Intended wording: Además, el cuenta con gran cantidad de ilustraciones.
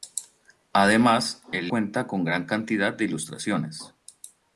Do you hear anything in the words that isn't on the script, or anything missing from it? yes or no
no